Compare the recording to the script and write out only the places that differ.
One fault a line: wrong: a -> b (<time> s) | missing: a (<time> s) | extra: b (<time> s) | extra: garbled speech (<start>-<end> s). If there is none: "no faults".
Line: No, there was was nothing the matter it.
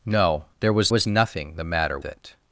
no faults